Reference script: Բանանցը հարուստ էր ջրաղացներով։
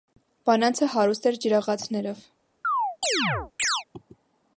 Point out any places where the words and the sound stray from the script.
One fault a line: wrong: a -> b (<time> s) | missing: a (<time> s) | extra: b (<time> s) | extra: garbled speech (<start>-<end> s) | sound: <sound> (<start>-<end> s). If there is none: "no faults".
sound: chirp (2.6-3.8 s)